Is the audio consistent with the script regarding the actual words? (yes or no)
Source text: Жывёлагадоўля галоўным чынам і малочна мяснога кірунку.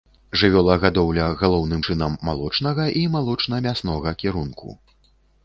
no